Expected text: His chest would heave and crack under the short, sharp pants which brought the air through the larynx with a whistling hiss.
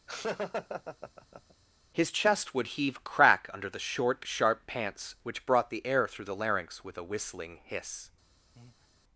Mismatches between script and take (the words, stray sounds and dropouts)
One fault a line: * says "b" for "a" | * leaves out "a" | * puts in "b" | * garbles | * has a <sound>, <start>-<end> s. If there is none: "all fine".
* has a laugh, 0.1-1.5 s
* leaves out "and"
* has a breath, 8.6-8.9 s